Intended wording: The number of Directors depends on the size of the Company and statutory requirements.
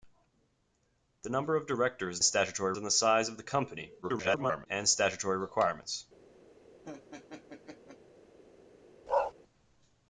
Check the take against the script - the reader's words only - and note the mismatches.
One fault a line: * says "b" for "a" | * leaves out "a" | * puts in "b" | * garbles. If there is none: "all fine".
* says "statutory" for "depends"
* garbles